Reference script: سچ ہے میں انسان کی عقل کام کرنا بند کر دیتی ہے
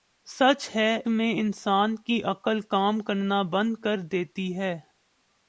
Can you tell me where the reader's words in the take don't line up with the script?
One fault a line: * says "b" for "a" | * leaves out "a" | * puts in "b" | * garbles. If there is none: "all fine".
all fine